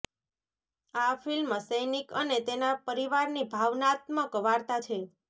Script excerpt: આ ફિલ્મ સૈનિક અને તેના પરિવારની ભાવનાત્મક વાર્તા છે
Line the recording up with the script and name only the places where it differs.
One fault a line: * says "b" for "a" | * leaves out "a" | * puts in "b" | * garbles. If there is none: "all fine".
all fine